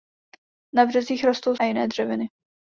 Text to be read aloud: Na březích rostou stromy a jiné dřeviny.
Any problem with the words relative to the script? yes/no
yes